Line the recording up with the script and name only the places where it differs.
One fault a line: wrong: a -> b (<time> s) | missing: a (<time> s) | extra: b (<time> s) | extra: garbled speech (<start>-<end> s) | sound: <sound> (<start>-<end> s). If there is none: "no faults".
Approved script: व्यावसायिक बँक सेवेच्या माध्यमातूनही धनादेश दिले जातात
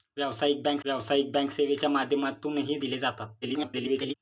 extra: व्यावसायिक बँक (0.8 s)
missing: धनादेश (2.8 s)
extra: garbled speech (3.4-4.1 s)